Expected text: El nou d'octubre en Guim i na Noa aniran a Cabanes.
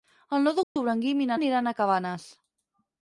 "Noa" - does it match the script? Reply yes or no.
no